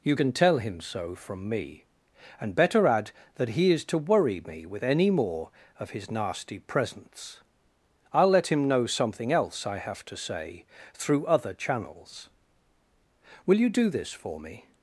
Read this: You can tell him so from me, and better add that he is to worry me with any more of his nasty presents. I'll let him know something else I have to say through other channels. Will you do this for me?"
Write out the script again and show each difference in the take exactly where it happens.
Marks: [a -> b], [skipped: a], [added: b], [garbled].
You can tell him so from me, and better add that he is to worry me with any more of his nasty presents. I'll let him know something else I have to say through other channels. Will you do this for me?"